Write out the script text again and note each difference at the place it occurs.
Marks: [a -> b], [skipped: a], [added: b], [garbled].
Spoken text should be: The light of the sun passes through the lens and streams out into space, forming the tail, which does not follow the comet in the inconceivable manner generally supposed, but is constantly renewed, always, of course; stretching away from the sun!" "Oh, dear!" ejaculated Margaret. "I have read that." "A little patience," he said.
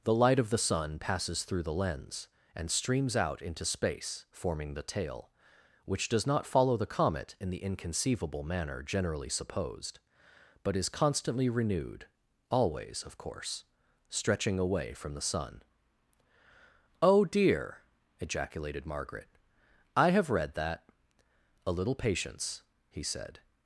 The light of the sun passes through the lens and streams out into space, forming the tail, which does not follow the comet in the inconceivable manner generally supposed, but is constantly renewed, always, of course; stretching away from the sun!" "Oh, dear!" ejaculated Margaret. "I have read that." "A little patience," he said.